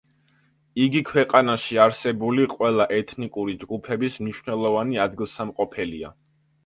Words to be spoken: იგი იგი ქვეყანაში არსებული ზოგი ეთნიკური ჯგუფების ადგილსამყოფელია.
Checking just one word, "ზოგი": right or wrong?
wrong